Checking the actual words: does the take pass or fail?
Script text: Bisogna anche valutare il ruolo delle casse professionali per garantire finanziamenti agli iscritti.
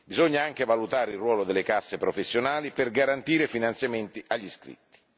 pass